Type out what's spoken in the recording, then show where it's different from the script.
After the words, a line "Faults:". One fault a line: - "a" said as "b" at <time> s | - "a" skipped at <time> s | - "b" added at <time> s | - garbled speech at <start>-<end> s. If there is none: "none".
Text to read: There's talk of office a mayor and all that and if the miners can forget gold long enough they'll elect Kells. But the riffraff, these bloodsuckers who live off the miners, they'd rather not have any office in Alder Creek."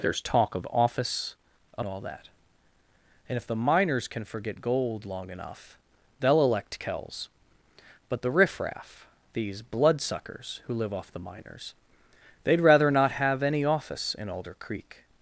There's talk of office a all that and if the miners can forget gold long enough they'll elect Kells. But the riffraff, these bloodsuckers who live off the miners, they'd rather not have any office in Alder Creek."
Faults:
- "mayor and" skipped at 1.8 s